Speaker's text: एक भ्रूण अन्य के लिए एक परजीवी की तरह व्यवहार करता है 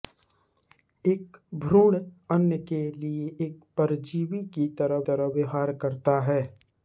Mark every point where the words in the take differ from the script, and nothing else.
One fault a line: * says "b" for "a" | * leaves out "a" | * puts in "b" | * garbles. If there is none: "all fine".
* puts in "तरह"